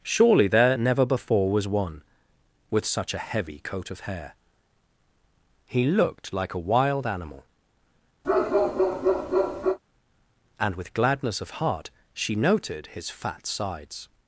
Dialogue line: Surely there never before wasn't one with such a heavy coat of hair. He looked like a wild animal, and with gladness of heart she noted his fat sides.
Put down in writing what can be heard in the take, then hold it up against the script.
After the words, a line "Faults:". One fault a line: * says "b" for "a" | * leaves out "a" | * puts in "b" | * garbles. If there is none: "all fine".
Surely there never before was one with such a heavy coat of hair. He looked like a wild animal, and with gladness of heart she noted his fat sides.
Faults:
* says "was" for "wasn't"